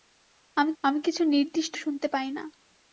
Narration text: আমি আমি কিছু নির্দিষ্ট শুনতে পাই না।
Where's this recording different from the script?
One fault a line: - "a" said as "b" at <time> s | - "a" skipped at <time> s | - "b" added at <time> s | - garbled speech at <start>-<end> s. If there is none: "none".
none